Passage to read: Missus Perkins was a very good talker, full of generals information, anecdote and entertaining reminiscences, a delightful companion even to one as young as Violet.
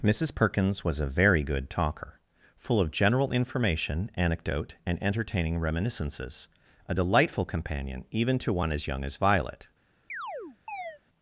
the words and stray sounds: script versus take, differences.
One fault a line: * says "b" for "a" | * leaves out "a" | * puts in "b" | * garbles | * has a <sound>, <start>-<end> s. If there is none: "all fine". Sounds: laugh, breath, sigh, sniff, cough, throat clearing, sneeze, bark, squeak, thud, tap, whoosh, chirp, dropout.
* says "general" for "generals"
* has a chirp, 10.1-11.0 s